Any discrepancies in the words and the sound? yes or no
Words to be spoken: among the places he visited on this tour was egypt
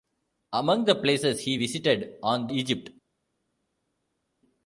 yes